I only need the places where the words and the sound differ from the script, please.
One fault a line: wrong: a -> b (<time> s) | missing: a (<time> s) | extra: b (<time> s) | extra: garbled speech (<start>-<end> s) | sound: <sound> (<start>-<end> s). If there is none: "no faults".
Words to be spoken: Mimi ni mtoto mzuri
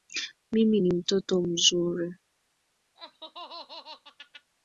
sound: laugh (3.0-4.5 s)